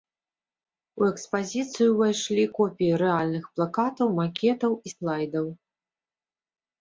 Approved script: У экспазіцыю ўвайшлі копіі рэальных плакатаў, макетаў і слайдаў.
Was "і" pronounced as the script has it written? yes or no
yes